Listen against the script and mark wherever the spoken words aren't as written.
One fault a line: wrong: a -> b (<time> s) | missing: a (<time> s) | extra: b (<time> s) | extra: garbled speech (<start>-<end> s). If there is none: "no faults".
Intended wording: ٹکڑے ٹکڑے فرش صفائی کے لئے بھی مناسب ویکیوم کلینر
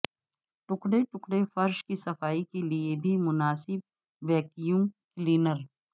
extra: کی (1.9 s)